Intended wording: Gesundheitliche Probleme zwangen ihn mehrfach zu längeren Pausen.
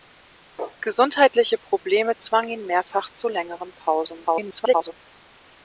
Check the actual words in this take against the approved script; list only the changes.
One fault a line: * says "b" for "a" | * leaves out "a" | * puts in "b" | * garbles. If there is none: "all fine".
* garbles